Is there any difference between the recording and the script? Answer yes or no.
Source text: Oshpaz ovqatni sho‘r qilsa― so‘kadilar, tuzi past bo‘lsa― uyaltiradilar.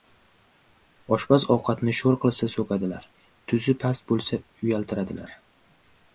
no